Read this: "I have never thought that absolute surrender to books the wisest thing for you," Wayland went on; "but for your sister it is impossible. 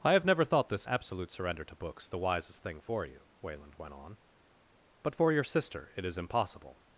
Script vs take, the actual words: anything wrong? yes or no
yes